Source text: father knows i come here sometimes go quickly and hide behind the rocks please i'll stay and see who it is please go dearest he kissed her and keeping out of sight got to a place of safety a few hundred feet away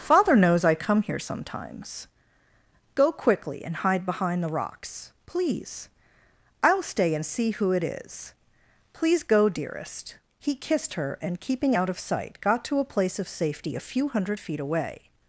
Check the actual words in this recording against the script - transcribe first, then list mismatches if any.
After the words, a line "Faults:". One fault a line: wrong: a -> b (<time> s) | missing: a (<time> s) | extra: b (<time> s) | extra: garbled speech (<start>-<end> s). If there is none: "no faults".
father knows i come here sometimes go quickly and hide behind the rocks please i'll stay and see who it is please go dearest he kissed her and keeping out of sight got to a place of safety a few hundred feet away
Faults:
no faults